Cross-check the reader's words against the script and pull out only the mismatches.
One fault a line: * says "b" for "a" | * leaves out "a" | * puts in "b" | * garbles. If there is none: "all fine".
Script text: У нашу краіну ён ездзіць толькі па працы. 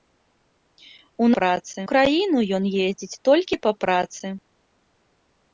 * says "працы" for "нашу"